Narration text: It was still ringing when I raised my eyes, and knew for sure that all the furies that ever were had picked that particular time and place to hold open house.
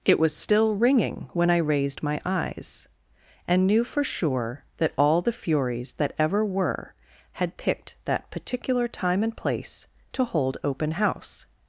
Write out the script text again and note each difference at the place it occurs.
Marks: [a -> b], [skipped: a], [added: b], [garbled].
It was still ringing when I raised my eyes, and knew for sure that all the furies that ever were had picked that particular time and place to hold open house.